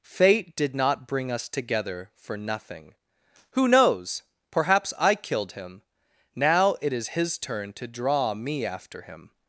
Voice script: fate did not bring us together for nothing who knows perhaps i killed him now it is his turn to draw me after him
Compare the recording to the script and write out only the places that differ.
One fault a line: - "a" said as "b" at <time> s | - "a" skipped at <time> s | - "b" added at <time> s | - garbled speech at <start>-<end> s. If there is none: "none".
none